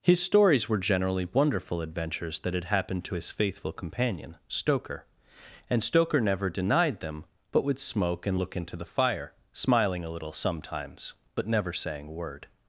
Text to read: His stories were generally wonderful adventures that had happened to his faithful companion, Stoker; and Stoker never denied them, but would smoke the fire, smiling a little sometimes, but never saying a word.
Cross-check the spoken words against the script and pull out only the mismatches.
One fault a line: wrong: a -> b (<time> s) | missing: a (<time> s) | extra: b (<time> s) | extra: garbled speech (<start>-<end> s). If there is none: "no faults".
extra: and look into (8.2 s)